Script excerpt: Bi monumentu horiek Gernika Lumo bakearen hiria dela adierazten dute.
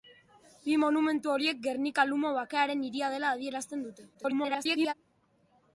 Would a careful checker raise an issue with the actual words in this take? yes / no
yes